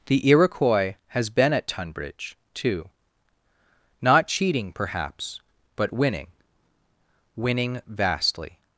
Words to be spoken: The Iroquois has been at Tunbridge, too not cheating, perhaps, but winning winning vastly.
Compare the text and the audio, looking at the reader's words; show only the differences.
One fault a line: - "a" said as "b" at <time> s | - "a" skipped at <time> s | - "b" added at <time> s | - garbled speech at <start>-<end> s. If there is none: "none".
none